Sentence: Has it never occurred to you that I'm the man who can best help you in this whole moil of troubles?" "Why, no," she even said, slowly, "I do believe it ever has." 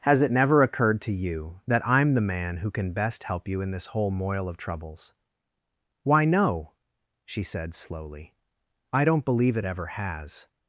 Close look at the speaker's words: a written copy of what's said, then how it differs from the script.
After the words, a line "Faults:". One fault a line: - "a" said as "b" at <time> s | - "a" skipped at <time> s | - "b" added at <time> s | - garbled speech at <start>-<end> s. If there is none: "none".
Has it never occurred to you that I'm the man who can best help you in this whole moil of troubles?" "Why, no," she said, slowly, "I don't believe it ever has."
Faults:
- "even" skipped at 7.4 s
- "do" said as "don't" at 9.1 s